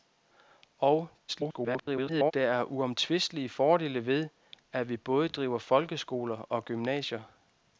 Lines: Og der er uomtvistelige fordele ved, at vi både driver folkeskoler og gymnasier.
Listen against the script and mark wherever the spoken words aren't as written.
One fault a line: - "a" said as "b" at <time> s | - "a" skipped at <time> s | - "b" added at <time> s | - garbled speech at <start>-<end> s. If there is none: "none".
- garbled speech at 1.3-2.3 s